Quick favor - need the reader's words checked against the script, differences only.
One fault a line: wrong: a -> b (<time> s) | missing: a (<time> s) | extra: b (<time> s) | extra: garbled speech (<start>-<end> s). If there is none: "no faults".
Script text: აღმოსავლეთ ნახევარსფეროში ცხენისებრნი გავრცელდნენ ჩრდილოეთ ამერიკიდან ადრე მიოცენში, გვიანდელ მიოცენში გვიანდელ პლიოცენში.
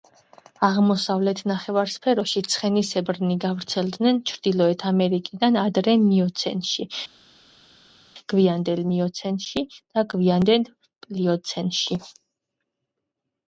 extra: და (9.8 s)